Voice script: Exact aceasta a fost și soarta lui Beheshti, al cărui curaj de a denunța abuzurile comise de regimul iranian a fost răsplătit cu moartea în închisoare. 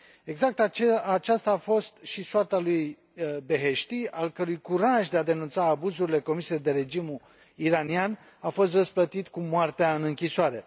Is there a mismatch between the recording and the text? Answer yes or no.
no